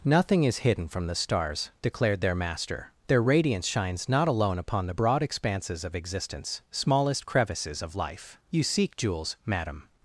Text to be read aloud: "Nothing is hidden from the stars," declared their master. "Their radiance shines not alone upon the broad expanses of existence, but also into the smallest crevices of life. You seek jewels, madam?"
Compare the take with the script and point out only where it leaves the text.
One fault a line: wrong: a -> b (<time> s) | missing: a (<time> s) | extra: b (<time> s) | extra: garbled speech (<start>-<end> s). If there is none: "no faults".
missing: but also into the (6.6 s)